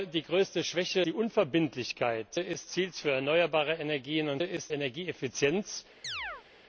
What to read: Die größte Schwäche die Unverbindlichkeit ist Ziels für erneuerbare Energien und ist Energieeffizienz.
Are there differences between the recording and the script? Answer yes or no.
no